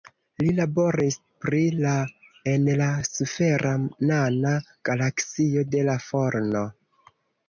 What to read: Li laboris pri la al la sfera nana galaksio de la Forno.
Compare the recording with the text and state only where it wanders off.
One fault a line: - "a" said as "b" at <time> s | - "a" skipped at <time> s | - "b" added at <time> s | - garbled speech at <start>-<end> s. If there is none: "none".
- "al" said as "en" at 2.5 s